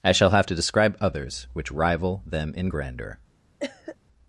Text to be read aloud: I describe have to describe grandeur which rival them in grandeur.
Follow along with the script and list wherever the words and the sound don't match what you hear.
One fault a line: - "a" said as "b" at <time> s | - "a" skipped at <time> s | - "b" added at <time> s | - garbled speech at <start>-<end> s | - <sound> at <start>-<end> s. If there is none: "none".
- "describe" said as "shall" at 0.1 s
- "grandeur" said as "others" at 1.0 s
- cough at 3.6-4.0 s